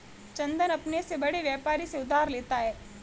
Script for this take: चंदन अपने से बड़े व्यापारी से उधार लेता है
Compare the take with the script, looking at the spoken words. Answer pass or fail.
pass